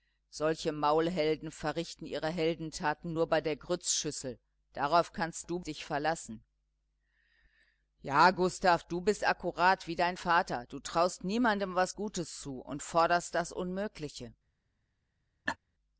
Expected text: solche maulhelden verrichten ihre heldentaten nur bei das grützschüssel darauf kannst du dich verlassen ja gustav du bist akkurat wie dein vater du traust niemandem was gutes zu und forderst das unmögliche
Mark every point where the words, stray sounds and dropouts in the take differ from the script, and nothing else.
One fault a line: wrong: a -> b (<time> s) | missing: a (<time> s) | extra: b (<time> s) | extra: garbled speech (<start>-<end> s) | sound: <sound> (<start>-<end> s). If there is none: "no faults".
wrong: das -> der (3.4 s)
sound: laugh (15.5-15.6 s)